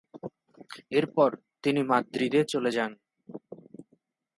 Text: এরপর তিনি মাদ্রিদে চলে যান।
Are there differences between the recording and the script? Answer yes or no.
no